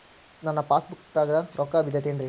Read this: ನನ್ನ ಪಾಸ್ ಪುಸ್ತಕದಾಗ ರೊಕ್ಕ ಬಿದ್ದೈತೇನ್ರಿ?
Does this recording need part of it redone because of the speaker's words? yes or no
no